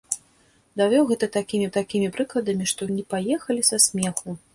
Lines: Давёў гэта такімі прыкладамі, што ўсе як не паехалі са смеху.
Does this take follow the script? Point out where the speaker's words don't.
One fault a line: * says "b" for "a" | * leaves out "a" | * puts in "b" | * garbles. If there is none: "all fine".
* puts in "такімі"
* leaves out "ўсе як"